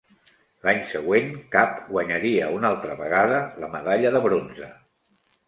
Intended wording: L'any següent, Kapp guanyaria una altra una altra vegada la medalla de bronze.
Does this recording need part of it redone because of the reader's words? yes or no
yes